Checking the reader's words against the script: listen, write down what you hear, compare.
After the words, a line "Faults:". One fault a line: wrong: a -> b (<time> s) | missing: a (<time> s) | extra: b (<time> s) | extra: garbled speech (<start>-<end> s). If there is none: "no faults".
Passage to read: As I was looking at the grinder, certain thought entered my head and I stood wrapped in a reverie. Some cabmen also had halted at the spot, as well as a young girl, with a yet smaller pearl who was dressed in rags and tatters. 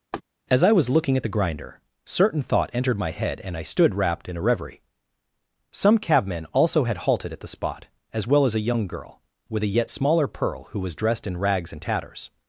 As I was looking at the grinder, certain thought entered my head and I stood wrapped in a reverie. Some cabmen also had halted at the spot, as well as a young girl, with a yet smaller pearl who was dressed in rags and tatters.
Faults:
no faults